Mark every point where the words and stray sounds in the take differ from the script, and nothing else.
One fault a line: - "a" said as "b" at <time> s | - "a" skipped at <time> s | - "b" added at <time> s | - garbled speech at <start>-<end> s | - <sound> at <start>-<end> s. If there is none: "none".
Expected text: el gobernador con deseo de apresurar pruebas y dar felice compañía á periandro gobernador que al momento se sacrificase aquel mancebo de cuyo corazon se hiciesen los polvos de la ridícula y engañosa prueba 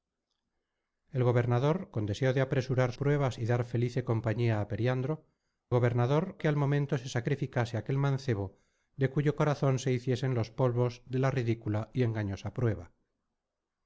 none